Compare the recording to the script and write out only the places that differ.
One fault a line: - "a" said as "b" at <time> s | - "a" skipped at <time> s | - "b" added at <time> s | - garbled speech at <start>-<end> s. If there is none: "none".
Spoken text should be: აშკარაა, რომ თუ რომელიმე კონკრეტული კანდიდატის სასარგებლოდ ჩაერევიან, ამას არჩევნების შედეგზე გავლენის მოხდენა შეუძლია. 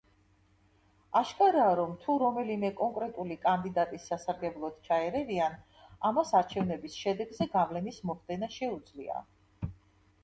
none